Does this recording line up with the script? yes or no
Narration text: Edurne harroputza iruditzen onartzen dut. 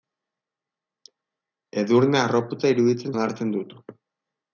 yes